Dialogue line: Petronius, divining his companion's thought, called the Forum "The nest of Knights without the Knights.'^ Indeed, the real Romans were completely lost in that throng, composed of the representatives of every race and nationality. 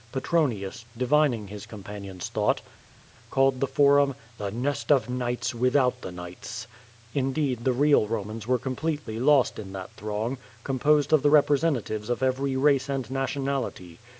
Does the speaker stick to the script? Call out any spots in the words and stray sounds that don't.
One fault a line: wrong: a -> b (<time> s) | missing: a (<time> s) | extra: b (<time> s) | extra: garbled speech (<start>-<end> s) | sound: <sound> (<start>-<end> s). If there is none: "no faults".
no faults